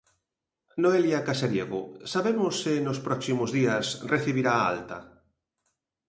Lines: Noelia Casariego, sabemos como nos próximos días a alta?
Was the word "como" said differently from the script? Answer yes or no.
yes